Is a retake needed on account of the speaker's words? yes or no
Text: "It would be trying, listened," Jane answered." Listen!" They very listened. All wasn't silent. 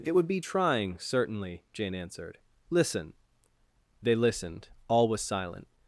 yes